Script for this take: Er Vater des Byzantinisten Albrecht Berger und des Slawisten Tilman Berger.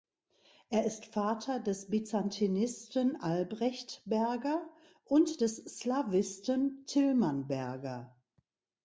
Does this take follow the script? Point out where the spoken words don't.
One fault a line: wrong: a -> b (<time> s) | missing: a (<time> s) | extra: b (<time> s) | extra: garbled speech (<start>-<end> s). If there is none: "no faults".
extra: ist (0.8 s)